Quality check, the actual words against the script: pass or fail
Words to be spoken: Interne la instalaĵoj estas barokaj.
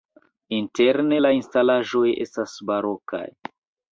pass